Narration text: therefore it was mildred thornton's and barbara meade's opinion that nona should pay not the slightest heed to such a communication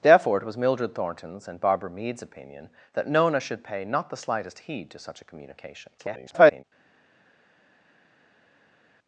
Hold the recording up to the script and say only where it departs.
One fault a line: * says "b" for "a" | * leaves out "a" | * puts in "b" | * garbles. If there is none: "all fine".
* garbles